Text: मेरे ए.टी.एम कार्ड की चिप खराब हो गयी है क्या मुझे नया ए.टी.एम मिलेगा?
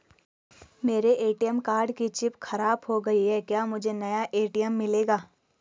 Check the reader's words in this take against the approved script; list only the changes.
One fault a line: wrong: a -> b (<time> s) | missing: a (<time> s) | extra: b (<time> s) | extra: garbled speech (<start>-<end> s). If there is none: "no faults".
no faults